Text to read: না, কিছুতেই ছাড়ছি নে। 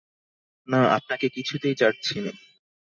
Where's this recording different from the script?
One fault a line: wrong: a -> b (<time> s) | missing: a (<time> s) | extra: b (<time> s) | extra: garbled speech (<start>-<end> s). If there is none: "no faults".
extra: আপনাকে (1.0 s)